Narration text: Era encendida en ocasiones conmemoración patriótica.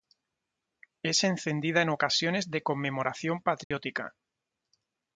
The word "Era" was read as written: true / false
false